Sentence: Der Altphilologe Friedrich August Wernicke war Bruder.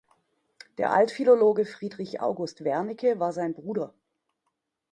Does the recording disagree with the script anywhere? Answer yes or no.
yes